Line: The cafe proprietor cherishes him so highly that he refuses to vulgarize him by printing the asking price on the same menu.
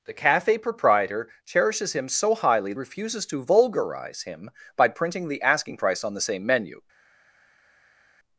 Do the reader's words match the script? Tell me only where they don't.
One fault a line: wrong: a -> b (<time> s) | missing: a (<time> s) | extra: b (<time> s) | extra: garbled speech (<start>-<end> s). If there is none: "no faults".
missing: that he (2.7 s)